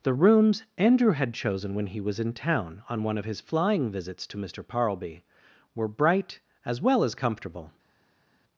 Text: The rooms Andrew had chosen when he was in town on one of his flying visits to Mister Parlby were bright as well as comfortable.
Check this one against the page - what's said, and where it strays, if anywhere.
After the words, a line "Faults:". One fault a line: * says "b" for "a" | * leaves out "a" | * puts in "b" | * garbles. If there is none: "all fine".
The rooms Andrew had chosen when he was in town on one of his flying visits to Mister Parlby were bright as well as comfortable.
Faults:
all fine